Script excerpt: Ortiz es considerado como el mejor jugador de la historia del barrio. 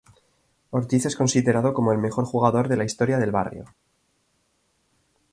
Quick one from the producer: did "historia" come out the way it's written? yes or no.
yes